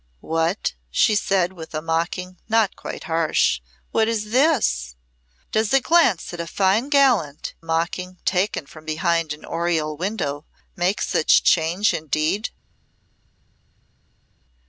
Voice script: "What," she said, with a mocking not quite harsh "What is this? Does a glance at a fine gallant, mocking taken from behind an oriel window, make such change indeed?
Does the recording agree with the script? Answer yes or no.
yes